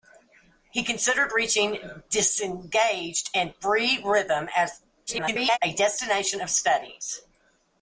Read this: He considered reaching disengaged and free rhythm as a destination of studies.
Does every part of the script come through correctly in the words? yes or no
no